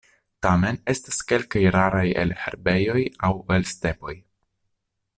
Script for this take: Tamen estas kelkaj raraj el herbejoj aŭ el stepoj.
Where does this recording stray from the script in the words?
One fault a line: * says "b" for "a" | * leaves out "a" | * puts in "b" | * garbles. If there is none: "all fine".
all fine